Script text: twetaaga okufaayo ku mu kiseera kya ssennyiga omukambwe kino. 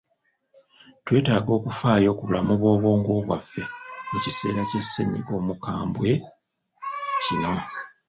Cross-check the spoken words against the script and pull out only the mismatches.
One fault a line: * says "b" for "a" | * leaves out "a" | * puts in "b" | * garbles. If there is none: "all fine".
* puts in "bulamu bw'obwongo bwaffe"